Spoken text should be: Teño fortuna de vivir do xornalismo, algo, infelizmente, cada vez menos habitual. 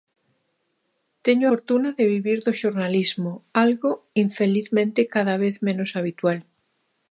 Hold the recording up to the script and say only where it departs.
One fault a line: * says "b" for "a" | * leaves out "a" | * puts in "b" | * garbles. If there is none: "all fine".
all fine